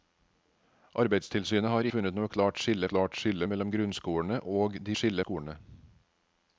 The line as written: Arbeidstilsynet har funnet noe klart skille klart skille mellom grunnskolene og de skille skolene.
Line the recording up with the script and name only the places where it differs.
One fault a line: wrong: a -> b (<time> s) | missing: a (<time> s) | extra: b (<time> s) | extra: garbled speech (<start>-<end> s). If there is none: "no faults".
no faults